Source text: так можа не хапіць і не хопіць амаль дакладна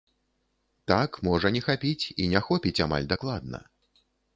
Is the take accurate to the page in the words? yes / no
yes